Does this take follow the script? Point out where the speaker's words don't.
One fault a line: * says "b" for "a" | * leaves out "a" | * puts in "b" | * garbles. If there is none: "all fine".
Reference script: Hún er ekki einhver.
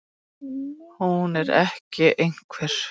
all fine